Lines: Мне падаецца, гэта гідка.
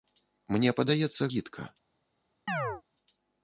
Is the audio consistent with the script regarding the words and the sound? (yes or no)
no